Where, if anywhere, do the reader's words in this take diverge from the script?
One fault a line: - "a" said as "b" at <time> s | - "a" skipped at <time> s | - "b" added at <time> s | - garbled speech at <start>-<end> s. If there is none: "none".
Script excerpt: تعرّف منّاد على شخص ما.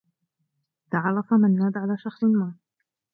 none